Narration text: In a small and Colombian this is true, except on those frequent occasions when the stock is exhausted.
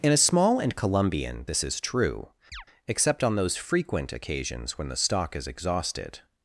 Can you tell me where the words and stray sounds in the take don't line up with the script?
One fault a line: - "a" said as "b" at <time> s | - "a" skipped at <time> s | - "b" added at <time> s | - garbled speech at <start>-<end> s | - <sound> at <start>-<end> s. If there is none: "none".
- chirp at 2.5-2.7 s